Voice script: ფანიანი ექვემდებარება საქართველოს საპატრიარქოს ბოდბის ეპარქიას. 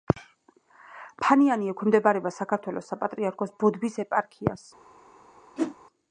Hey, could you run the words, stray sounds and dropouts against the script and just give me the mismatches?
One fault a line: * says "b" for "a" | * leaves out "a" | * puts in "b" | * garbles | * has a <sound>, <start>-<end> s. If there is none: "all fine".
* has a whoosh, 5.6-5.8 s